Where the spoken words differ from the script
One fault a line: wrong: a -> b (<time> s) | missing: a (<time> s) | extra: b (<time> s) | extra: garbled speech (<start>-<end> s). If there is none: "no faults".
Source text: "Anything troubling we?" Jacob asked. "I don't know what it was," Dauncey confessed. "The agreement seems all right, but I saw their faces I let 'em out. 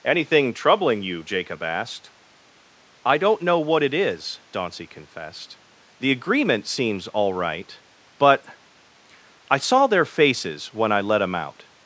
wrong: we -> you (1.0 s)
wrong: was -> is (3.9 s)
extra: when (10.7 s)